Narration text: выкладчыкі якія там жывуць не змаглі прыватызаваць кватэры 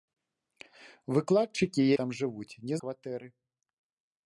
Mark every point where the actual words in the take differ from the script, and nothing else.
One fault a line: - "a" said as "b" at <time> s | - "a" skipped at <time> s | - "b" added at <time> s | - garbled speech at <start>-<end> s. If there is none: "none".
- "якія" skipped at 1.8 s
- "змаглі прыватызаваць" skipped at 2.8 s